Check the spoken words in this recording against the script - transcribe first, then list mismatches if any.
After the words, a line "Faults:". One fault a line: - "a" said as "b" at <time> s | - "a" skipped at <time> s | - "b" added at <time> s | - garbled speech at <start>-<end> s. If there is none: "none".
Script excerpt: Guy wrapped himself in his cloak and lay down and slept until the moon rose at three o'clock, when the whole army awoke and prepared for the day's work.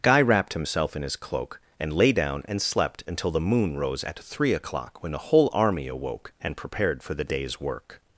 Guy wrapped himself in his cloak and lay down and slept until the moon rose at three o'clock, when the whole army awoke and prepared for the day's work.
Faults:
none